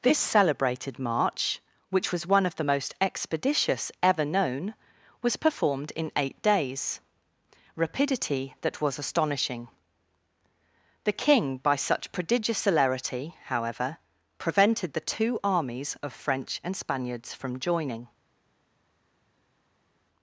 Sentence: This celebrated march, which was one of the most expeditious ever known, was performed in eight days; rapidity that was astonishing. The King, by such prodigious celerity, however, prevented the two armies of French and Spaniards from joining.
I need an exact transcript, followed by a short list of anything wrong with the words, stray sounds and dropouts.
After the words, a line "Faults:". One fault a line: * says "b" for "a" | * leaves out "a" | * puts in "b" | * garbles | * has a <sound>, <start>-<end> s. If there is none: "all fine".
This celebrated march, which was one of the most expeditious ever known, was performed in eight days; rapidity that was astonishing. The King, by such prodigious celerity, however, prevented the two armies of French and Spaniards from joining.
Faults:
all fine